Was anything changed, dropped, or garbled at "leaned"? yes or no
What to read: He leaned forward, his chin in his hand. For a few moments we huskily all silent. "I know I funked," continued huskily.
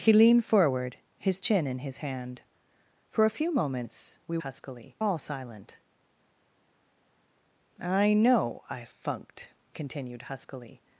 no